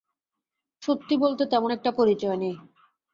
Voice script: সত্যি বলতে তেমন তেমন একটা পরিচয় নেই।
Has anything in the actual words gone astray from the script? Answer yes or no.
yes